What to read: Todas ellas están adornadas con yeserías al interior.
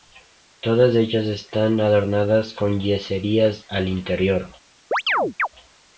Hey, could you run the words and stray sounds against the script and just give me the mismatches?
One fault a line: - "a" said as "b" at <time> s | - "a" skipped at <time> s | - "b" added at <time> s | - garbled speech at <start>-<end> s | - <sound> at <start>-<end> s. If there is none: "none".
- chirp at 4.9-5.5 s